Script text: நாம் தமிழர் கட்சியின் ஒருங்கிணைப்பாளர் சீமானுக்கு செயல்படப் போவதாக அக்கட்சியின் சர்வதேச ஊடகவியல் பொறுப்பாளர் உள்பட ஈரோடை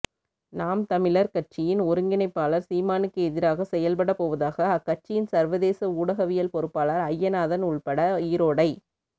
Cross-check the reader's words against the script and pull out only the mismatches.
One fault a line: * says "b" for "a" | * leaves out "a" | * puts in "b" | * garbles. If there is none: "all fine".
* puts in "எதிராக"
* puts in "அய்யநாதன்"